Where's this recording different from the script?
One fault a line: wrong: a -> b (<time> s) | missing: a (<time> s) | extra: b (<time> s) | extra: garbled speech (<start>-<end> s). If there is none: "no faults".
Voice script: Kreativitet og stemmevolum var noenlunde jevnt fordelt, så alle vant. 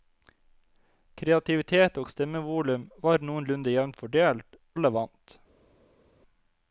missing: så (4.6 s)